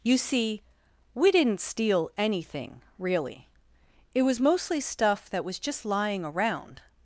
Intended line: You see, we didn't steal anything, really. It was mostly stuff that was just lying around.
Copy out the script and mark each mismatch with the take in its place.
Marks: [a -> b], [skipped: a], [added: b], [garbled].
You see, we didn't steal anything, really. It was mostly stuff that was just lying around.